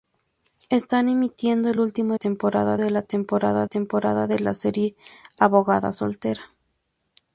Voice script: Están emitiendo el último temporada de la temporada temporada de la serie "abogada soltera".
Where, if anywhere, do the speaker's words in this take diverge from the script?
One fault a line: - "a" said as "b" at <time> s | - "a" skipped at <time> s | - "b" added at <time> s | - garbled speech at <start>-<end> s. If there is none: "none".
none